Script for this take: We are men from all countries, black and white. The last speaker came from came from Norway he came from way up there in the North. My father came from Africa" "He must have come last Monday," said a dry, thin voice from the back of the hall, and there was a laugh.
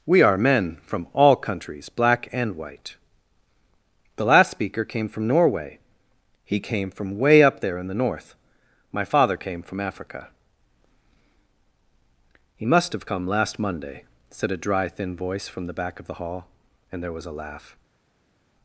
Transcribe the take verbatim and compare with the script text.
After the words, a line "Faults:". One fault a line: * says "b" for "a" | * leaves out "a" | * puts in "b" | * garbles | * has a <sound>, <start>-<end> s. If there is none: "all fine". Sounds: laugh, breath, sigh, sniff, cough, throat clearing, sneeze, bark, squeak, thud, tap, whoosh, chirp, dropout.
We are men from all countries, black and white. The last speaker came from Norway he came from way up there in the North. My father came from Africa" "He must have come last Monday," said a dry, thin voice from the back of the hall, and there was a laugh.
Faults:
* leaves out "came from"